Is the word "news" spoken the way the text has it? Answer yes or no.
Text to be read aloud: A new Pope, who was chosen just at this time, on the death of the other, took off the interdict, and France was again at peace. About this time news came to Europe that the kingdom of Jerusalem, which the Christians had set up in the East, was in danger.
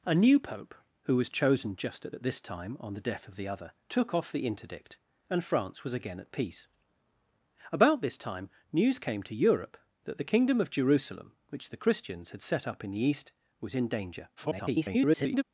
yes